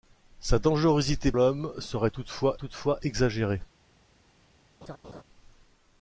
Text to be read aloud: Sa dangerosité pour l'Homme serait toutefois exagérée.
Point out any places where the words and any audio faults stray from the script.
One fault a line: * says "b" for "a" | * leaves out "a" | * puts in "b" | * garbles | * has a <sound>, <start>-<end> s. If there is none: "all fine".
* leaves out "pour"
* puts in "toutefois"
* has a laugh, 4.8-5.2 s